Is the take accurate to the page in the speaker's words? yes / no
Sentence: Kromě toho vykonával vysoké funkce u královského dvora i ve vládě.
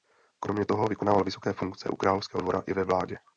yes